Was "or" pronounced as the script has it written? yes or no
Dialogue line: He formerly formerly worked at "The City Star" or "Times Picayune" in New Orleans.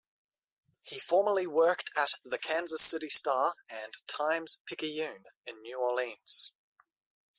no